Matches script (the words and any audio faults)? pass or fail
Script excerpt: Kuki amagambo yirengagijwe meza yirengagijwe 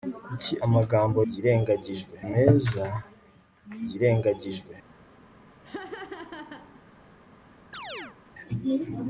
fail